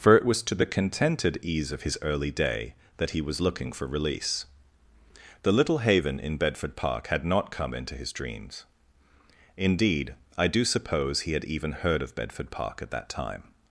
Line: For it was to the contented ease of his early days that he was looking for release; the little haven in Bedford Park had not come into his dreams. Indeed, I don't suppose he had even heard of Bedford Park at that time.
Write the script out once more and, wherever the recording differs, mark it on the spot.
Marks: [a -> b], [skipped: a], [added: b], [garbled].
For it was to the contented ease of his early [days -> day] that he was looking for release; the little haven in Bedford Park had not come into his dreams. Indeed, I [don't -> do] suppose he had even heard of Bedford Park at that time.